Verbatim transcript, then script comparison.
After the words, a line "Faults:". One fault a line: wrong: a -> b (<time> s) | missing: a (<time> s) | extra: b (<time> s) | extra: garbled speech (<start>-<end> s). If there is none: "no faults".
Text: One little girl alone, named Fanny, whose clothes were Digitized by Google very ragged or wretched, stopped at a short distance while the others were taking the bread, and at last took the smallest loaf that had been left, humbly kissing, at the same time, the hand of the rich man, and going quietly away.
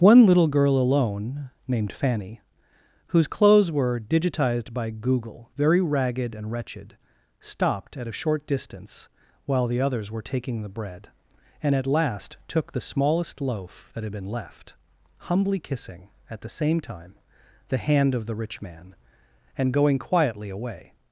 One little girl alone, named Fanny, whose clothes were Digitized by Google very ragged and wretched, stopped at a short distance while the others were taking the bread, and at last took the smallest loaf that had been left, humbly kissing, at the same time, the hand of the rich man, and going quietly away.
Faults:
wrong: or -> and (6.3 s)